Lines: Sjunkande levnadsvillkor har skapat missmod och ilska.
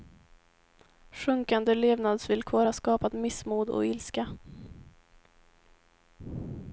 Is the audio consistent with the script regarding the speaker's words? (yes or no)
yes